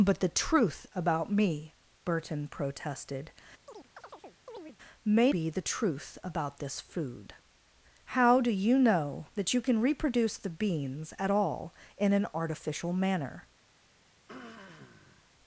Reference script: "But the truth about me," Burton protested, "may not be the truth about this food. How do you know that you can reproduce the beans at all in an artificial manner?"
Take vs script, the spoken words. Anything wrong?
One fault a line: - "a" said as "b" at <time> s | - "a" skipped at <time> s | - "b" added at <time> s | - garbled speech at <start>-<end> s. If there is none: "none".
- "not" skipped at 5.3 s